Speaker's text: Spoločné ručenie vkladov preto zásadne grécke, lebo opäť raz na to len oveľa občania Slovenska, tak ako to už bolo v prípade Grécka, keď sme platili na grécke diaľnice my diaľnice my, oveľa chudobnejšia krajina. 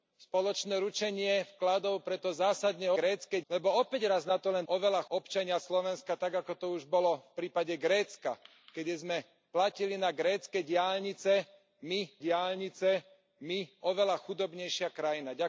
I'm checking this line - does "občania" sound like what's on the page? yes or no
yes